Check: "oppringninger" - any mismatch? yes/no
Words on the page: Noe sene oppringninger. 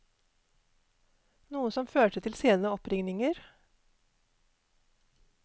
no